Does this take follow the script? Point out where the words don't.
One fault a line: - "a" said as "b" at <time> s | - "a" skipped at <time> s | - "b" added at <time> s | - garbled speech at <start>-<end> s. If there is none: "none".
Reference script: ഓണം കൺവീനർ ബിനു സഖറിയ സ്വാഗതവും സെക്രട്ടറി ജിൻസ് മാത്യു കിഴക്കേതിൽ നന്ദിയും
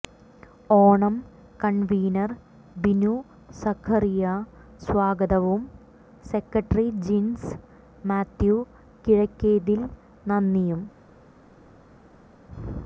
none